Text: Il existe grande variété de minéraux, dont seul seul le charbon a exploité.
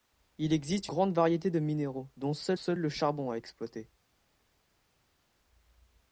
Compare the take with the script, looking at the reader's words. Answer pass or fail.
pass